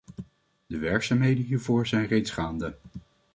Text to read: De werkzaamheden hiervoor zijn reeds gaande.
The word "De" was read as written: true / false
true